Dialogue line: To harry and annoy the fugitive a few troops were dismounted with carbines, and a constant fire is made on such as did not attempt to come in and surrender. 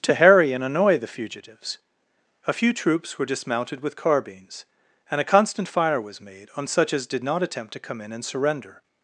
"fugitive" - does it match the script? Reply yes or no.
no